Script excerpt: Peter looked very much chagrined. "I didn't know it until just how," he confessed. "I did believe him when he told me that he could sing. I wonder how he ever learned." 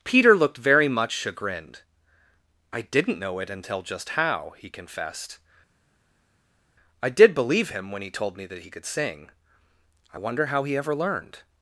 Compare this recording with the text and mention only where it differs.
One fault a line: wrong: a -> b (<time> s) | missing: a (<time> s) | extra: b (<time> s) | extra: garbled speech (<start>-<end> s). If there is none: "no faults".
no faults